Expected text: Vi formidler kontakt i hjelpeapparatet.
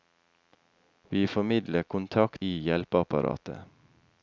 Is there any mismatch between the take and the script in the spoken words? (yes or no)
no